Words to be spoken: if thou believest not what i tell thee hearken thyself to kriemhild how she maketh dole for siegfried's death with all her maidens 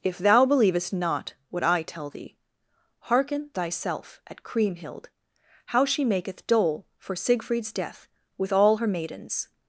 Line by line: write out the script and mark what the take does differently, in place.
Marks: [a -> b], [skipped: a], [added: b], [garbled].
if thou believest not what i tell thee hearken thyself [to -> at] kriemhild how she maketh dole for siegfried's death with all her maidens